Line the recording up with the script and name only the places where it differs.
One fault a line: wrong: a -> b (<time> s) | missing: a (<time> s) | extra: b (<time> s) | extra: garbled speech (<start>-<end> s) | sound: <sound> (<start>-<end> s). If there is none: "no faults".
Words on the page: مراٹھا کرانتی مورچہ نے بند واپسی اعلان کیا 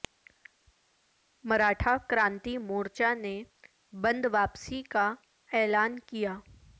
extra: کا (4.9 s)